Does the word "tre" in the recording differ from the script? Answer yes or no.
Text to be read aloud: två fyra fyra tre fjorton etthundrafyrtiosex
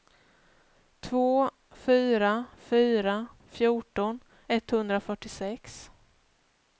yes